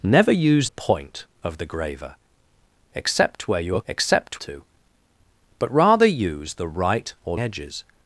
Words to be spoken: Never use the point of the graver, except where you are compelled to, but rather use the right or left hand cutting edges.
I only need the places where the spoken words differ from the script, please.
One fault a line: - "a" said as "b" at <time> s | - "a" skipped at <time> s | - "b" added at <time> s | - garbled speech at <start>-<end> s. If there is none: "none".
- "the" skipped at 0.7 s
- "compelled" said as "except" at 3.9 s
- "left hand cutting" skipped at 7.4 s